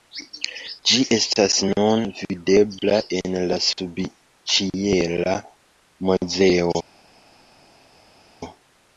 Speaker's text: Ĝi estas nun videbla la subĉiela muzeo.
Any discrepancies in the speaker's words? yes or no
yes